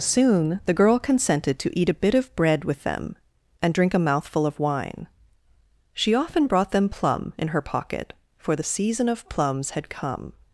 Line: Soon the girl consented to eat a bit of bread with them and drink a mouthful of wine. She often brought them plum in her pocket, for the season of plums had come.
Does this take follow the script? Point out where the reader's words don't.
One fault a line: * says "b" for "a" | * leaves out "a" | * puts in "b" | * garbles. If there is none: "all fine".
all fine